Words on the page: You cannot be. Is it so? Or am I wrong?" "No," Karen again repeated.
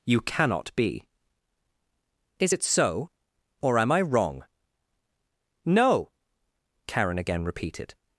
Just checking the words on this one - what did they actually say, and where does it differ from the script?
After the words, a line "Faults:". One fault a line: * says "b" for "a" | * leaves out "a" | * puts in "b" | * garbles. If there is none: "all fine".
You cannot be. Is it so? Or am I wrong?" "No," Karen again repeated.
Faults:
all fine